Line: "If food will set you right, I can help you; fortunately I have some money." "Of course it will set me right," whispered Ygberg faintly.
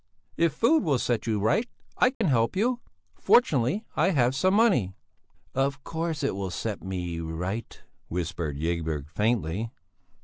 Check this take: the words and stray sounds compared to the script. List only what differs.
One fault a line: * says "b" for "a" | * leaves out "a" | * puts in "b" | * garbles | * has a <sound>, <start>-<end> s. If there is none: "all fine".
* has a dropout, 2.1-2.2 s